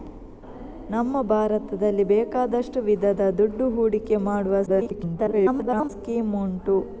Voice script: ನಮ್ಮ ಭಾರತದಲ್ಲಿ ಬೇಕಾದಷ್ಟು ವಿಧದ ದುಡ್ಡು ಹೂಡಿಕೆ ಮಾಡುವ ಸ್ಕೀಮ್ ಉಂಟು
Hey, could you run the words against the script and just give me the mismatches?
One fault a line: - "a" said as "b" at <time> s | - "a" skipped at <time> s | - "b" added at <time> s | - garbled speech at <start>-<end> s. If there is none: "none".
- garbled speech at 4.7-5.9 s